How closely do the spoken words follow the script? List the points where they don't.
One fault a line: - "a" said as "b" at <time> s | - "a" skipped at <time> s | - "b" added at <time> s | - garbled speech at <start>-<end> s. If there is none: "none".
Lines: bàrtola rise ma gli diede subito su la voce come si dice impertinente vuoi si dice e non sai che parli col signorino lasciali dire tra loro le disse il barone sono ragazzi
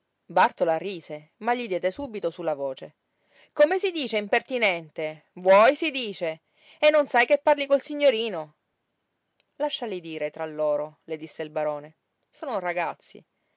none